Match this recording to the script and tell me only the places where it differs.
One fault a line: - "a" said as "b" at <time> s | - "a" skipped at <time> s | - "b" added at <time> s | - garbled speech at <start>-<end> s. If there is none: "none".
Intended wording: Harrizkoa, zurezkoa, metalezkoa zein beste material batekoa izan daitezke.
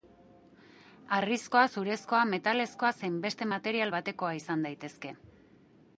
none